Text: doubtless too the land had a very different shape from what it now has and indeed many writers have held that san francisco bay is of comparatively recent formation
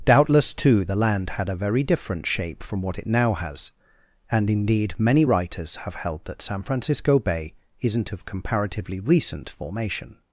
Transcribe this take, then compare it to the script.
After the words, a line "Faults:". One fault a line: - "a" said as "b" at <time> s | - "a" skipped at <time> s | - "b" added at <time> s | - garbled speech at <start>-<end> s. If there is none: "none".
doubtless too the land had a very different shape from what it now has and indeed many writers have held that san francisco bay isn't of comparatively recent formation
Faults:
- "is" said as "isn't" at 7.8 s